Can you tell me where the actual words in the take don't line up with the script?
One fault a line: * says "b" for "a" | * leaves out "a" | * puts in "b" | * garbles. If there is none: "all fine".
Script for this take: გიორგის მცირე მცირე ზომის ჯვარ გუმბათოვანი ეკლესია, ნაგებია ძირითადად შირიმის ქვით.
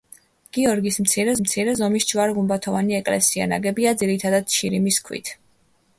all fine